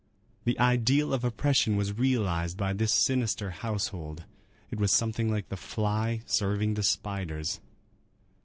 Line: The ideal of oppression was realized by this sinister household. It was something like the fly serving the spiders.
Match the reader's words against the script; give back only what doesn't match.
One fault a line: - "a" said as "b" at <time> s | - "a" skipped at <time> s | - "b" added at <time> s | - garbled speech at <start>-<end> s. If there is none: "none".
none